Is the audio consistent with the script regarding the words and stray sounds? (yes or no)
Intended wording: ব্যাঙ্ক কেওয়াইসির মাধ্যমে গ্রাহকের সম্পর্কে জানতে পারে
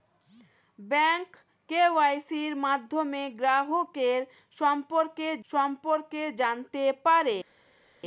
no